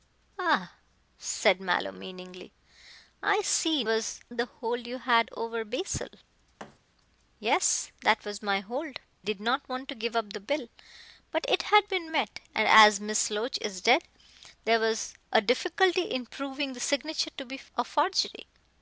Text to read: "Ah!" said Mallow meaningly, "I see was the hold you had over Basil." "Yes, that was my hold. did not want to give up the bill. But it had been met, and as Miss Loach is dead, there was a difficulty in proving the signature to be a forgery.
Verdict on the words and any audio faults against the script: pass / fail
fail